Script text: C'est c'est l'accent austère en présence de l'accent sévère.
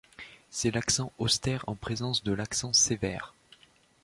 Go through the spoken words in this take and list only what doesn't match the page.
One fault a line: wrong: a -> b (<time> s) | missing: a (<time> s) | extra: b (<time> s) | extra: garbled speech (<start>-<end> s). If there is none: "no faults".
missing: c'est (0.7 s)